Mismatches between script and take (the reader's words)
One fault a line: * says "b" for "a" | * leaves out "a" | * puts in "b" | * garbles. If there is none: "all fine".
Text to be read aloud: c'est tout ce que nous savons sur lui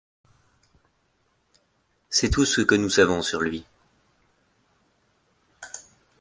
all fine